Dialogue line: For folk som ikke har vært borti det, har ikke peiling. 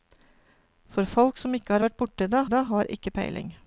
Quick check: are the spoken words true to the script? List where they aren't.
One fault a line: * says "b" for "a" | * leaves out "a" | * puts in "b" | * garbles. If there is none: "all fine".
* puts in "det"